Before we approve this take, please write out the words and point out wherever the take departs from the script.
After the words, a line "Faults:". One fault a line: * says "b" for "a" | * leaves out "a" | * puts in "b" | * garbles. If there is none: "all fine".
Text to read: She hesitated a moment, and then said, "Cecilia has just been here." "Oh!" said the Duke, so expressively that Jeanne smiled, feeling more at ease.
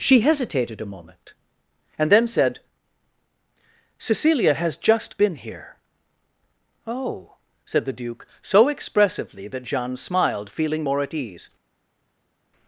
She hesitated a moment, and then said, "Cecilia has just been here." "Oh!" said the Duke, so expressively that Jeanne smiled, feeling more at ease.
Faults:
all fine